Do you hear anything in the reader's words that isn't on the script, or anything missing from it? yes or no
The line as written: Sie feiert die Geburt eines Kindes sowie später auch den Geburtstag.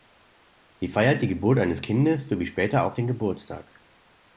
no